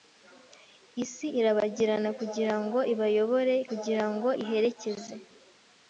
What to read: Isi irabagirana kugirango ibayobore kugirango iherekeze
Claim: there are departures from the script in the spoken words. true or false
false